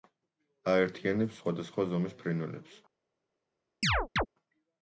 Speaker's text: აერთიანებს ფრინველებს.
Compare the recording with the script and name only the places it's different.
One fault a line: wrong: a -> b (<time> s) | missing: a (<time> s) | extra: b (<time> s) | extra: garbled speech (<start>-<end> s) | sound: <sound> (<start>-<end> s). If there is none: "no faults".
extra: სხვადასხვა ზომის (1.4 s)
sound: chirp (3.8-4.3 s)